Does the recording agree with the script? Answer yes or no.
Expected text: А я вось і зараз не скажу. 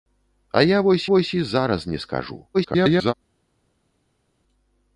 no